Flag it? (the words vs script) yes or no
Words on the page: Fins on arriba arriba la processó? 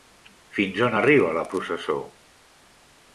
yes